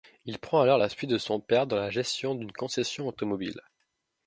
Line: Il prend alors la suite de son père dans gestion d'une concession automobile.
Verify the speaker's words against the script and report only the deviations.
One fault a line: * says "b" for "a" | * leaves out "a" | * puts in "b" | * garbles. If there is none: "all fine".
* puts in "la"